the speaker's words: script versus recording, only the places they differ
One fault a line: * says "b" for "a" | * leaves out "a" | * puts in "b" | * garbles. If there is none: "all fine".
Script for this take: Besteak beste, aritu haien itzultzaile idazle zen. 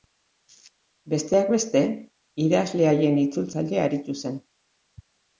* says "idazle" for "aritu"
* says "aritu" for "idazle"